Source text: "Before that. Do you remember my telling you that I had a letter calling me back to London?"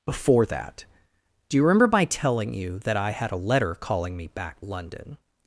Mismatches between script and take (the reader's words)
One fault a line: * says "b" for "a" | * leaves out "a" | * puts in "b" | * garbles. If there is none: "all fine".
* leaves out "to"